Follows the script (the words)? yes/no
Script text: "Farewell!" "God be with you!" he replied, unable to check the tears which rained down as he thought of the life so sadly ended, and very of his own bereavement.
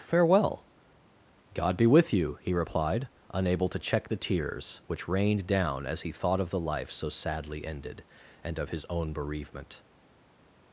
no